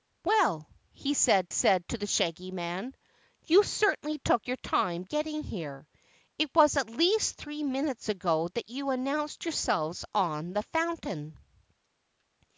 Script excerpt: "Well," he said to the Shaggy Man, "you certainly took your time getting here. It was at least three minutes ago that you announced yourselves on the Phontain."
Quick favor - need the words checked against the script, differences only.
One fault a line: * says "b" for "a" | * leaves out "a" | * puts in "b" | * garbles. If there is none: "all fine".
* puts in "said"